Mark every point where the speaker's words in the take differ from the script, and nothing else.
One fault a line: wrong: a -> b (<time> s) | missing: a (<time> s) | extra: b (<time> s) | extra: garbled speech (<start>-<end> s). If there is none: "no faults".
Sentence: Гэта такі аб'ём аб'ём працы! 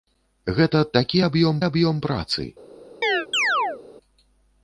no faults